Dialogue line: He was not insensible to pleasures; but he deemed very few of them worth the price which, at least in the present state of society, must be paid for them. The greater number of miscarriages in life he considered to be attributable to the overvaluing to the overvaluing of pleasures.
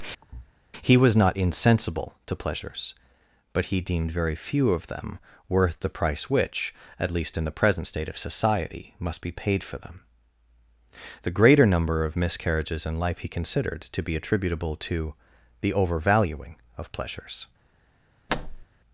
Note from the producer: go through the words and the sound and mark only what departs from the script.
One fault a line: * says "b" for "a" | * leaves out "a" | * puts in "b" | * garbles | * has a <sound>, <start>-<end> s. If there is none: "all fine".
* has a thud, 0.2-0.5 s
* leaves out "to the overvaluing"
* has a thud, 18.3-18.7 s